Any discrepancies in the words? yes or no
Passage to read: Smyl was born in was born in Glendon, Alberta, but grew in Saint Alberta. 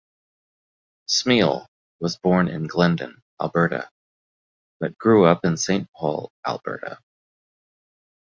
yes